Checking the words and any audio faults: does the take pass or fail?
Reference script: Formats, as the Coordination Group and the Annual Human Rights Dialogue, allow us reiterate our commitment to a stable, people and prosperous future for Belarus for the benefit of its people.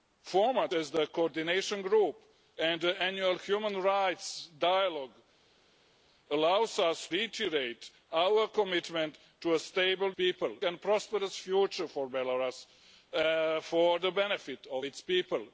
pass